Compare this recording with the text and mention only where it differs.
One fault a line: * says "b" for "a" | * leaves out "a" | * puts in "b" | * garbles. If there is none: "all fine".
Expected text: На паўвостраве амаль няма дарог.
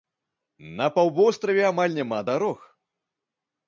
all fine